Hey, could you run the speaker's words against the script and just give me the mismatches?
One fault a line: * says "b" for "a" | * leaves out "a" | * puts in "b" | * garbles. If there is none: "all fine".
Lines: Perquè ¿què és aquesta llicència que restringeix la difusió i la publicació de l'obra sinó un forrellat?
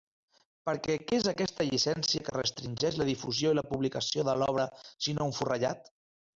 all fine